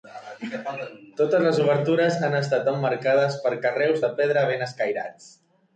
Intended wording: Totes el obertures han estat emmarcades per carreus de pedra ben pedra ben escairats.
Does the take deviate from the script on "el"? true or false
true